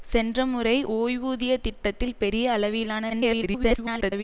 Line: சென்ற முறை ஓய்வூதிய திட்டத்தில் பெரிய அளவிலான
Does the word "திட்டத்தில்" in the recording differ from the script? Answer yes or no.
no